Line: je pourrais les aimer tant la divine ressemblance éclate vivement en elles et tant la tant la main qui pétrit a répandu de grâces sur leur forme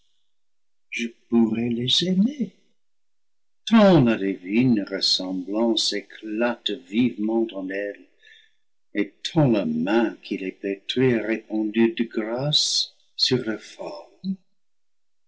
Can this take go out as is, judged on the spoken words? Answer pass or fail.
fail